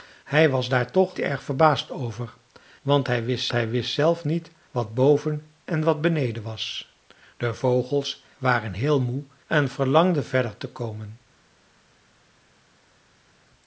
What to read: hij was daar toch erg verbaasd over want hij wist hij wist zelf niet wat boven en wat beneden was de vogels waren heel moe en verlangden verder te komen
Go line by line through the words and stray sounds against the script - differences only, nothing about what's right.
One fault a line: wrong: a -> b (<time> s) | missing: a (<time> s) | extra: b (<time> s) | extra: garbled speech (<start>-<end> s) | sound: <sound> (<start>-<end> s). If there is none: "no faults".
no faults